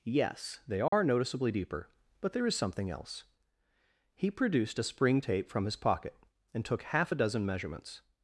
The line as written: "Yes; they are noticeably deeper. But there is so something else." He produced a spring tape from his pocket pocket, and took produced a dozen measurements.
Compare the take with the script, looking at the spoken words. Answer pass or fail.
fail